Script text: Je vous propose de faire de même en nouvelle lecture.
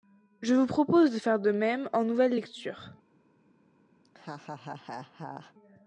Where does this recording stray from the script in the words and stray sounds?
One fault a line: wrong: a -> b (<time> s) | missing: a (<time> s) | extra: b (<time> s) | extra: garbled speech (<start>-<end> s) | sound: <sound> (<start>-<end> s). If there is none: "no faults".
sound: laugh (4.0-5.5 s)